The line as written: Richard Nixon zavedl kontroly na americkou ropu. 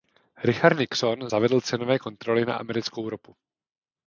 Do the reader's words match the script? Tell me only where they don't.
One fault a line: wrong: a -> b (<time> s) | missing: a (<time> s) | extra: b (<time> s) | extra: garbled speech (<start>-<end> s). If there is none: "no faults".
extra: cenové (1.6 s)